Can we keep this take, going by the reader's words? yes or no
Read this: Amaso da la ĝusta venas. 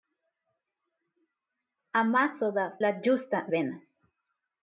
yes